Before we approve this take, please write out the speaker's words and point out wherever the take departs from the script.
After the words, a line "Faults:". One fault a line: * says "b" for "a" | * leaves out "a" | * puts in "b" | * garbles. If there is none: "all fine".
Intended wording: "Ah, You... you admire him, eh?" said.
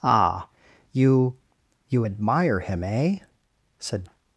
"Ah, You... you admire him, eh?" said.
Faults:
all fine